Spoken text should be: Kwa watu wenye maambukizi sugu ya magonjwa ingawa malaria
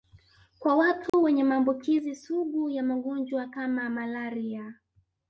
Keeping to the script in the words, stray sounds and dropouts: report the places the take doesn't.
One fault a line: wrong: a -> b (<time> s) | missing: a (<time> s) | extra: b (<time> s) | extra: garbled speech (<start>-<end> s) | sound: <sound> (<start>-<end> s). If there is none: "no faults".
sound: dropout (1.1-1.1 s)
wrong: ingawa -> kama (3.5 s)